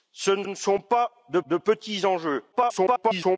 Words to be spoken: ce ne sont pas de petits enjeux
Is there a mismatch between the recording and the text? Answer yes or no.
yes